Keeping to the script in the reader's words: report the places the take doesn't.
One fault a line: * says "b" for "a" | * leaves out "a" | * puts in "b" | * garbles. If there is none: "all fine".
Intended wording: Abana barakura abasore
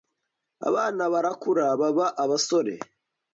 * puts in "baba"